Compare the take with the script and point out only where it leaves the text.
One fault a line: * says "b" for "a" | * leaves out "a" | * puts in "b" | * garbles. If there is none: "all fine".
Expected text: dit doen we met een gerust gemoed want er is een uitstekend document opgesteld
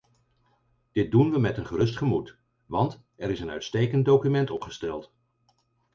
all fine